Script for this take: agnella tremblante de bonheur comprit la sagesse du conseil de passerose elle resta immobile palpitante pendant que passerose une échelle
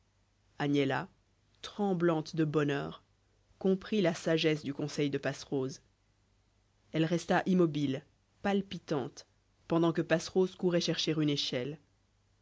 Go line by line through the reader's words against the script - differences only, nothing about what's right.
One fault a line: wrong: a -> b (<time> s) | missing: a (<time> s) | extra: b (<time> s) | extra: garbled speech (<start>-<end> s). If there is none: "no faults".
extra: courait chercher (10.5 s)